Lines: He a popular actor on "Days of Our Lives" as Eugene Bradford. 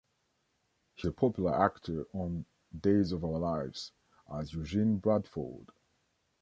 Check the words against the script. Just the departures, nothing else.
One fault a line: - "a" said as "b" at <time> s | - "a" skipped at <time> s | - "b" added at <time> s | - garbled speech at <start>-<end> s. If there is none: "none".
none